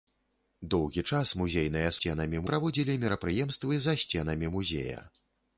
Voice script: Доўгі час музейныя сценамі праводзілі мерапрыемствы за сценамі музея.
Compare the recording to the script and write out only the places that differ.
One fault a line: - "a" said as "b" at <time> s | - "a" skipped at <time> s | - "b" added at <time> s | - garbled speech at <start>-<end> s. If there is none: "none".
none